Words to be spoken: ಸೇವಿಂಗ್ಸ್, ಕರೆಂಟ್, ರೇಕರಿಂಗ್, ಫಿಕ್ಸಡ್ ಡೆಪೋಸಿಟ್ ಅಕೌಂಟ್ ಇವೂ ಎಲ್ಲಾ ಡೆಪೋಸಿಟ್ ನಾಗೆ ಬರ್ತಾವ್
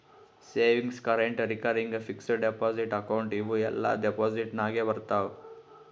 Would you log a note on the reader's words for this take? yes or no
no